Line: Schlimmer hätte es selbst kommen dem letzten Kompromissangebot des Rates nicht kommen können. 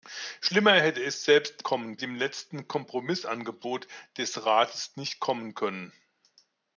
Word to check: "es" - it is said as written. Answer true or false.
true